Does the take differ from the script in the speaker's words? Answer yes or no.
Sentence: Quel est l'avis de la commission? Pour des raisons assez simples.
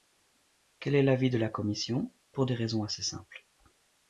no